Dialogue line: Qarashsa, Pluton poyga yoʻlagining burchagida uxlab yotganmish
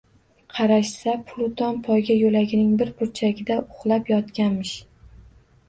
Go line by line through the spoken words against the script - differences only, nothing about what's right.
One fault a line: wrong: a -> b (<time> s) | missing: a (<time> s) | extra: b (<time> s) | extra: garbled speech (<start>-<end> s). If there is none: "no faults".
extra: bir (2.8 s)